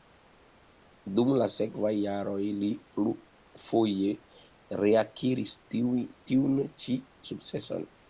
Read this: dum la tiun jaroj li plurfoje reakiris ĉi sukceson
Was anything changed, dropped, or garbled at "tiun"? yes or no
yes